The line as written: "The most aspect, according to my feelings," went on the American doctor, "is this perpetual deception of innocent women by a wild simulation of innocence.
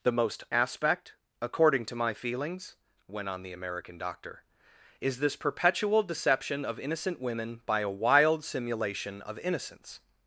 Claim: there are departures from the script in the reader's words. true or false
false